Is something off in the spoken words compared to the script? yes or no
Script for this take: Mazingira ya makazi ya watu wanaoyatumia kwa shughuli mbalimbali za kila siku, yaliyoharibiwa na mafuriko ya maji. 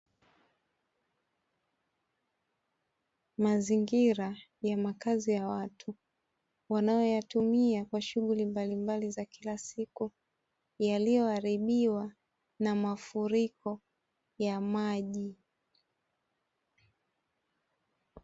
no